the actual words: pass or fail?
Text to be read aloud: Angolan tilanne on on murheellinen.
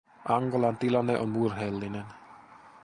fail